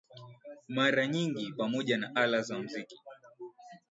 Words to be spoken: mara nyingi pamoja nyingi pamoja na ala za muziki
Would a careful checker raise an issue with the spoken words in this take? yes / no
yes